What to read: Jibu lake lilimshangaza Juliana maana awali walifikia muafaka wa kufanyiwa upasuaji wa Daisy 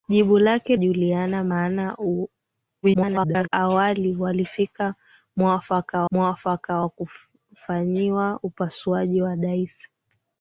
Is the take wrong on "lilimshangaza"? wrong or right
wrong